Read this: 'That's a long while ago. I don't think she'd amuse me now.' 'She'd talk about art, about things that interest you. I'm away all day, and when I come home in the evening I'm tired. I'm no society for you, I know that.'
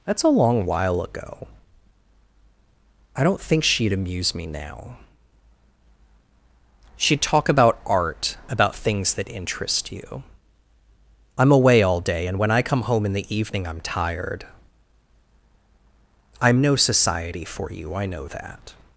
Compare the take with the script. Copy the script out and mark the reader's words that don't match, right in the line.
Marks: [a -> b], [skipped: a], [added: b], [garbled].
'That's a long while ago. I don't think she'd amuse me now.' 'She'd talk about art, about things that interest you. I'm away all day, and when I come home in the evening I'm tired. I'm no society for you, I know that.'